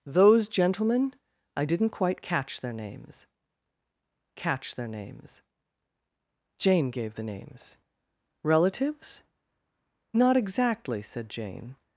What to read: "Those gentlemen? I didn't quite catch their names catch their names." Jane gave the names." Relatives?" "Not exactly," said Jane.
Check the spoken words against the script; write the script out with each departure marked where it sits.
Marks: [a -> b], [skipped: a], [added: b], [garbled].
"Those gentlemen? I didn't quite catch their names catch their names." Jane gave the names." Relatives?" "Not exactly," said Jane.